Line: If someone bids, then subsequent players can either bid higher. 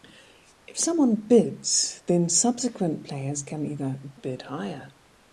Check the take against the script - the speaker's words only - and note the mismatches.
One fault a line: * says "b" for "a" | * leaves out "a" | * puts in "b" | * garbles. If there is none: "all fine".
all fine